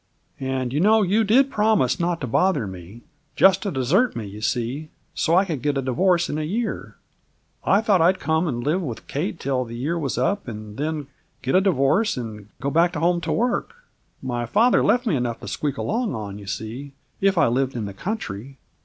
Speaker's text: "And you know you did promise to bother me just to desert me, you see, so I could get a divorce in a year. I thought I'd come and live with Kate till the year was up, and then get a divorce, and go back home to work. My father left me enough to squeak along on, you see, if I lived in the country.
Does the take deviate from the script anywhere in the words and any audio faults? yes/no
yes